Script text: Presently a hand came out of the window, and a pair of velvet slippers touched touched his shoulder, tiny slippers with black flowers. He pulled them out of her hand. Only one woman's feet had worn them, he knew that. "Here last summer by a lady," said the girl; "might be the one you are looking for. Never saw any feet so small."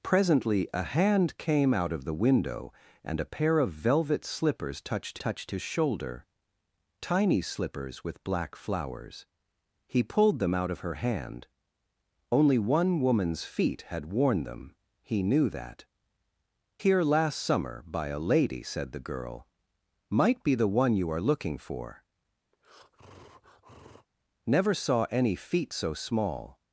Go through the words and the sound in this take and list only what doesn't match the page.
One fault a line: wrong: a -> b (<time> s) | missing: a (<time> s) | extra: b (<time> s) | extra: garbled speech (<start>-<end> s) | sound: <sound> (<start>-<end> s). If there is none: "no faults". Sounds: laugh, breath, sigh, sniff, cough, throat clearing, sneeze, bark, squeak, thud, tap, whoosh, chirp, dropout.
sound: breath (22.5-24.1 s)